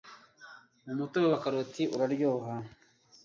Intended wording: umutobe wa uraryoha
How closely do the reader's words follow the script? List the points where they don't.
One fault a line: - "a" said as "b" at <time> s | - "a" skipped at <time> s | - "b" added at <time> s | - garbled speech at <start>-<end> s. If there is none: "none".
- "karoti" added at 1.4 s